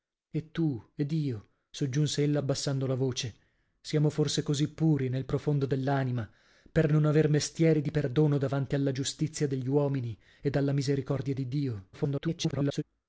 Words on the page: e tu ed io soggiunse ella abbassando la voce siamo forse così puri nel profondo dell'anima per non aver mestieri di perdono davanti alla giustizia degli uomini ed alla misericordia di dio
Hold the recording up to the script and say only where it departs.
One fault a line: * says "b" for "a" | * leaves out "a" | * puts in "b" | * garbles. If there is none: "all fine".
* garbles